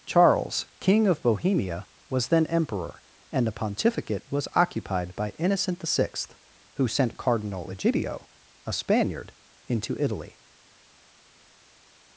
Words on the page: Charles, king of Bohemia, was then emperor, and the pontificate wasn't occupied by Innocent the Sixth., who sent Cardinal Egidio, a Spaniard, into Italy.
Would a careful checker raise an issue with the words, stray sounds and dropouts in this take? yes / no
yes